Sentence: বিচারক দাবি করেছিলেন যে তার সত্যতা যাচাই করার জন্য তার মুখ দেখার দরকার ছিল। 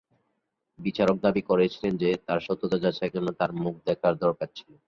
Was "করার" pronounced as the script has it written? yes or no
no